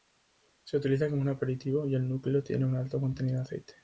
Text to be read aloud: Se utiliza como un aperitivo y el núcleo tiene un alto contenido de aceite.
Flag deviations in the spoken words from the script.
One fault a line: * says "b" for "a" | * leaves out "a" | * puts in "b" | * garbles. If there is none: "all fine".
all fine